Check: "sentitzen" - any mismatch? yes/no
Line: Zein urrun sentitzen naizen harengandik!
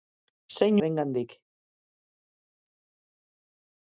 yes